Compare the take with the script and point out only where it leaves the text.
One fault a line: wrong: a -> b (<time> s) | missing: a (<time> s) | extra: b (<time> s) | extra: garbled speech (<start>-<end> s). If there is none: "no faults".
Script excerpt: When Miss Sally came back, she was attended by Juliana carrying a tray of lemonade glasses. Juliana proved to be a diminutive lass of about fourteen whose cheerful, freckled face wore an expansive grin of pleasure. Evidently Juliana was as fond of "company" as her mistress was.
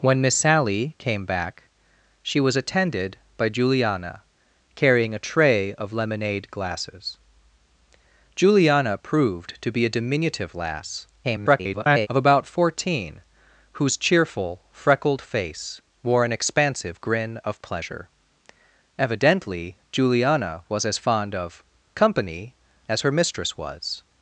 extra: garbled speech (11.2-12.1 s)